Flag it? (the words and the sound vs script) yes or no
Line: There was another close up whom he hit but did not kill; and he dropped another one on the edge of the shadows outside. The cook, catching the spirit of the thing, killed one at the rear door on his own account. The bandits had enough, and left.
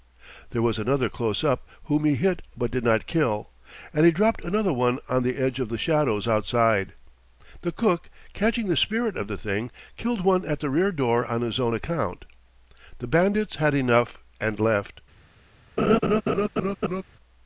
yes